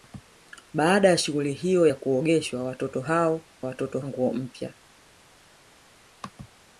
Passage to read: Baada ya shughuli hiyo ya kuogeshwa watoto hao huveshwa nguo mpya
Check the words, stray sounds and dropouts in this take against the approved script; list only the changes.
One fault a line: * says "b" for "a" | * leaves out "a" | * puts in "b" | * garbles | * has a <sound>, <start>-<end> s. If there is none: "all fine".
* says "watoto" for "huveshwa"